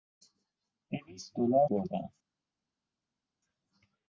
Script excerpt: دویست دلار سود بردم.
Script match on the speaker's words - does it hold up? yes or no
no